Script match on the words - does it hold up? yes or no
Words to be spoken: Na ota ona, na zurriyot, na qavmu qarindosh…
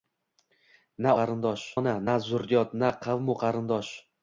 no